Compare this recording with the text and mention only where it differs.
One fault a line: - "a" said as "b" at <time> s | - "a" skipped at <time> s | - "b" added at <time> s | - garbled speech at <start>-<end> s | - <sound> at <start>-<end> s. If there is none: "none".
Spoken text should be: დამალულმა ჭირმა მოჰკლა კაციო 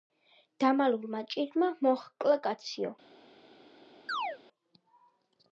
- chirp at 4.1-4.4 s